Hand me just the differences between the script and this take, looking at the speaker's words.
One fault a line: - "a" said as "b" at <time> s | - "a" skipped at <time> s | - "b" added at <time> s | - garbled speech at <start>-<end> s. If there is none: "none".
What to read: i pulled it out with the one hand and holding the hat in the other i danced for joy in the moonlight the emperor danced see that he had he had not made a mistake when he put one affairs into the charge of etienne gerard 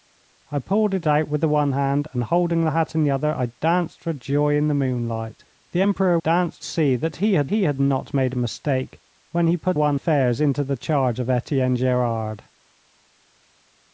none